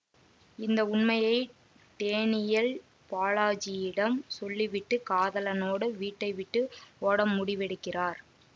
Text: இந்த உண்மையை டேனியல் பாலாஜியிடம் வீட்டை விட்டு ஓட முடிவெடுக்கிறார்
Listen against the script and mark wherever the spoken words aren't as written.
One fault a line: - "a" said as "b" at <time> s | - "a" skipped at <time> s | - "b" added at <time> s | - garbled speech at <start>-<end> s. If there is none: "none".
- "சொல்லிவிட்டு காதலனோடு" added at 4.4 s